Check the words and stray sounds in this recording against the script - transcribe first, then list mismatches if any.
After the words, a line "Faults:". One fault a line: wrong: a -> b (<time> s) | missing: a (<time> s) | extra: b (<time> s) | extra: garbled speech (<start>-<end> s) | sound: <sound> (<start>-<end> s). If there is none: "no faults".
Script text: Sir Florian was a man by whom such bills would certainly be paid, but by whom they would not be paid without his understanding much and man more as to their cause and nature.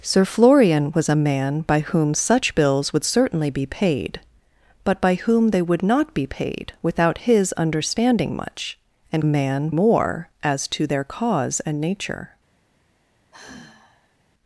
Sir Florian was a man by whom such bills would certainly be paid, but by whom they would not be paid without his understanding much and man more as to their cause and nature.
Faults:
sound: sigh (13.3-14.2 s)